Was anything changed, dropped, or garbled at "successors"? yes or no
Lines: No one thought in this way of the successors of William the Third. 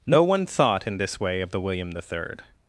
yes